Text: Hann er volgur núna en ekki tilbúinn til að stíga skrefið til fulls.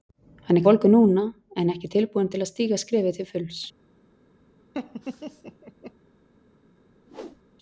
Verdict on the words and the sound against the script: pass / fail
fail